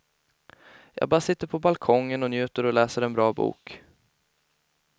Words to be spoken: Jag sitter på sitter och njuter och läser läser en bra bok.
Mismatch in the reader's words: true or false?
true